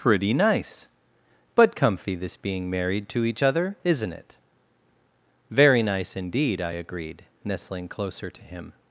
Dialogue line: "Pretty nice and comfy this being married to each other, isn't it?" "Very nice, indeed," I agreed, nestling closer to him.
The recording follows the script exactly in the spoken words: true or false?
false